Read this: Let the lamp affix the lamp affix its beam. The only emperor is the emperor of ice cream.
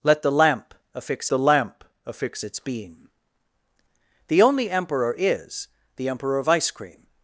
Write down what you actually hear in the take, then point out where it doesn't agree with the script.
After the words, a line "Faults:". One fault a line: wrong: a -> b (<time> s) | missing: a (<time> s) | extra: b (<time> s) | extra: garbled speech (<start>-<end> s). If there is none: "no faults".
Let the lamp affix the lamp affix its beam. The only emperor is the emperor of ice cream.
Faults:
no faults